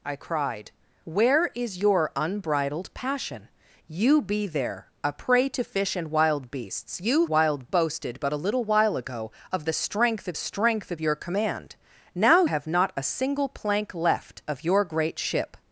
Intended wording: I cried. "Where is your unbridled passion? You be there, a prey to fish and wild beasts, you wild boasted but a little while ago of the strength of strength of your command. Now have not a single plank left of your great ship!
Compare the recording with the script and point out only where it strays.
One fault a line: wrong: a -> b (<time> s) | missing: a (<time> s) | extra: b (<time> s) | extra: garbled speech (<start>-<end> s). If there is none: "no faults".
no faults